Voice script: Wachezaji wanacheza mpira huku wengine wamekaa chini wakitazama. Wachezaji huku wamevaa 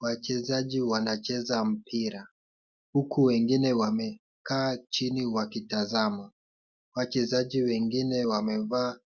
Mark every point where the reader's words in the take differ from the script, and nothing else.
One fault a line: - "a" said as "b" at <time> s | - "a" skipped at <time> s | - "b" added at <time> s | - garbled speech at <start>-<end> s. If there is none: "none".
- "huku" said as "wengine" at 7.6 s